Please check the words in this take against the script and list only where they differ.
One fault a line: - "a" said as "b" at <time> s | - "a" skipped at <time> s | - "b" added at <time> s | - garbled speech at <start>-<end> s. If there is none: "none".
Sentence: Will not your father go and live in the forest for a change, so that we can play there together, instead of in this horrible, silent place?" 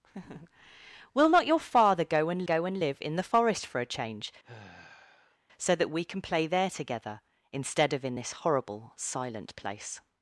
- "go and" added at 2.4 s